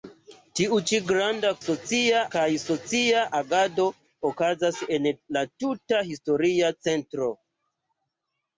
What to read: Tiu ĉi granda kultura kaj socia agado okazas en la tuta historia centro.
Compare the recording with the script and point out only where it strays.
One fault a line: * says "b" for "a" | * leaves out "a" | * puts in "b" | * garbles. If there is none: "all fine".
* says "socia" for "kultura"